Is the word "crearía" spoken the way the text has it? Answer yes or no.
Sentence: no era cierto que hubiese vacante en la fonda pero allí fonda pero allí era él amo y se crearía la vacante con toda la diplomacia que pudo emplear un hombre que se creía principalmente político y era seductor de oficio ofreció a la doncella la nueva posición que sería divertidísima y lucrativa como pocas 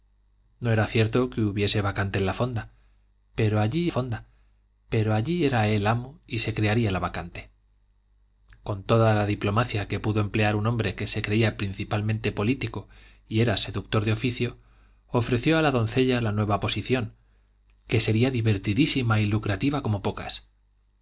yes